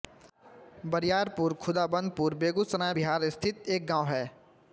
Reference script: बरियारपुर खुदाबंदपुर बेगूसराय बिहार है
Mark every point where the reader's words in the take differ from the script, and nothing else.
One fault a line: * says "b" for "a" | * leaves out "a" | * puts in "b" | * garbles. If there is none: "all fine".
* puts in "स्थित एक गाँव"